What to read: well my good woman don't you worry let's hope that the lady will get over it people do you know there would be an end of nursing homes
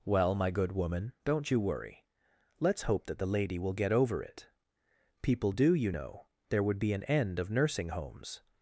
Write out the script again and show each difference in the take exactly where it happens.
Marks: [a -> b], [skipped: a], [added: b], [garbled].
well my good woman don't you worry let's hope that the lady will get over it people do you know there would be an end of nursing homes